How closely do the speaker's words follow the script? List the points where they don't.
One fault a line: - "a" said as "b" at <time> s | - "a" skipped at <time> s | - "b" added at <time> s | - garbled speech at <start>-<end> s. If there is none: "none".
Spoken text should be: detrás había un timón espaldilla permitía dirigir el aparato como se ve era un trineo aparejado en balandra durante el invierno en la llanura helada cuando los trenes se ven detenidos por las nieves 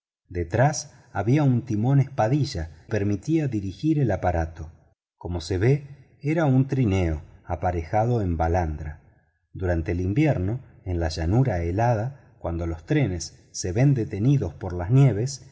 none